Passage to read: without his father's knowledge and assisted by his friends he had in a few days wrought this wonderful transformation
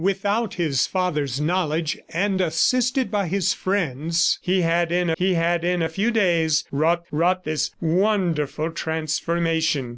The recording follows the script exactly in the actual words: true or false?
false